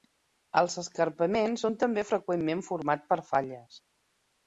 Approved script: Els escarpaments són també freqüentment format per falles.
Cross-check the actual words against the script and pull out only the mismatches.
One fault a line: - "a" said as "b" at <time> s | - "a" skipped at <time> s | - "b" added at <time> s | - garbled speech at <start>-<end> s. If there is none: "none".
none